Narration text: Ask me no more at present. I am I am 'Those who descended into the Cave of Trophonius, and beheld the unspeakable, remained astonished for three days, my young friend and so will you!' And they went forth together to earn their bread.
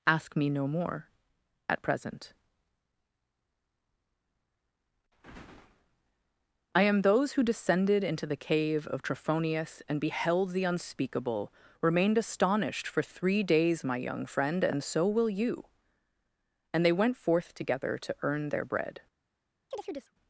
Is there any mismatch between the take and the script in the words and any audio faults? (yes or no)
yes